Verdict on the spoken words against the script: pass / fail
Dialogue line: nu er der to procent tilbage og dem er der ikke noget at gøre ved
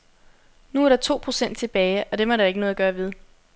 pass